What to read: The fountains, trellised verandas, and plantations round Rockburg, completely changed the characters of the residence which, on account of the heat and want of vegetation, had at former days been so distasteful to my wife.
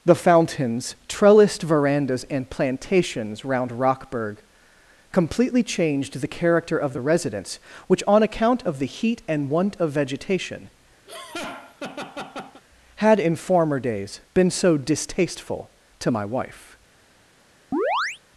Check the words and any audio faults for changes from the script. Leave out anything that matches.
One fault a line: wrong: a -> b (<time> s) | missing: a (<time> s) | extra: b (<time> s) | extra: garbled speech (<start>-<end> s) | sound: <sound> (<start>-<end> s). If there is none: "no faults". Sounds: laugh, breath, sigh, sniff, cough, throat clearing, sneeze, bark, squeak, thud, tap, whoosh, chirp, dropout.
wrong: characters -> character (6.3 s)
sound: laugh (11.1-12.6 s)
wrong: at -> in (13.2 s)
sound: chirp (17.7-18.2 s)